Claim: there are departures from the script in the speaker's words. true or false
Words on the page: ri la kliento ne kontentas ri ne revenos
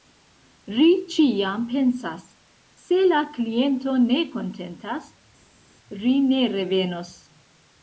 true